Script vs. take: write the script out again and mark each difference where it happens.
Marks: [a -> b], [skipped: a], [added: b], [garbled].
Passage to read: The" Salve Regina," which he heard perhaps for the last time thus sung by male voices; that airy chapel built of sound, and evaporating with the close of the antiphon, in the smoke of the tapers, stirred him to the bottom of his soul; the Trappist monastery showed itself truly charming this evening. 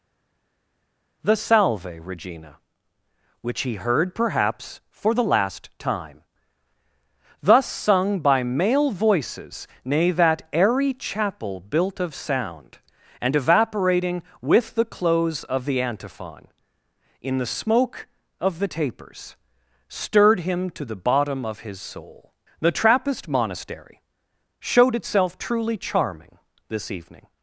The" Salve Regina," which he heard perhaps for the last time thus sung by male voices; [added: nay] that airy chapel built of sound, and evaporating with the close of the antiphon, in the smoke of the tapers, stirred him to the bottom of his soul; the Trappist monastery showed itself truly charming this evening.